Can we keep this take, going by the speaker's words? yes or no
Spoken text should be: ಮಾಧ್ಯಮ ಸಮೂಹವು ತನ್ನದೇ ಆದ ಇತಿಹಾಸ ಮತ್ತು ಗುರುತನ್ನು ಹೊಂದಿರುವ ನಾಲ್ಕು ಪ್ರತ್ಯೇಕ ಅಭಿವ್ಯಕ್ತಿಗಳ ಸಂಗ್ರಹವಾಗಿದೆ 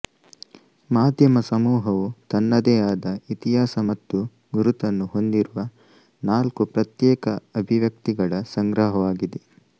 yes